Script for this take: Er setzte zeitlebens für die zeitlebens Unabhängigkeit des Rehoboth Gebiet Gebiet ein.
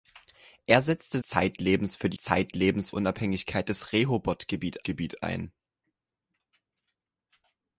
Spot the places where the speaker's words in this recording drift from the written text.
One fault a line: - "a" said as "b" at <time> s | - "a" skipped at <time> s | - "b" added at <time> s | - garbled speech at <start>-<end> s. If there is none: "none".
none